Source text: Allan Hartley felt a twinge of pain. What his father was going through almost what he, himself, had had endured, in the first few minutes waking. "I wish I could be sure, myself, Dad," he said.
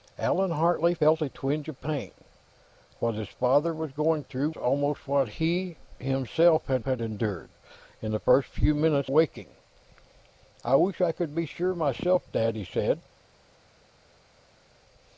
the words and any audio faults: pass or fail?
pass